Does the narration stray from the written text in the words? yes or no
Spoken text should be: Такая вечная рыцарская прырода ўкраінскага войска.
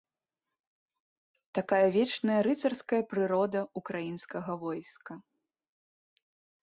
no